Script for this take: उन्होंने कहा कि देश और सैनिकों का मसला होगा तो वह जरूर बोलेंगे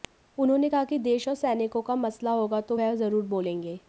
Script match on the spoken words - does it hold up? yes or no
yes